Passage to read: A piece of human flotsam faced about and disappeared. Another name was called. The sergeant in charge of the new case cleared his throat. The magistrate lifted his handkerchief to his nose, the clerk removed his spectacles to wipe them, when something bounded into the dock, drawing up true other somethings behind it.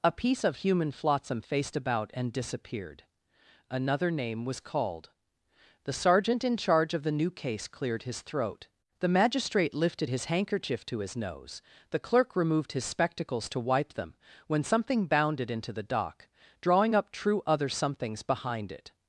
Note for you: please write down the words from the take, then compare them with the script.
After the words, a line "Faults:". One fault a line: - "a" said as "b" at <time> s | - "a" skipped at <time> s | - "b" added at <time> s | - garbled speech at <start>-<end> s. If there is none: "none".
A piece of human flotsam faced about and disappeared. Another name was called. The sergeant in charge of the new case cleared his throat. The magistrate lifted his handkerchief to his nose, the clerk removed his spectacles to wipe them, when something bounded into the dock, drawing up true other somethings behind it.
Faults:
none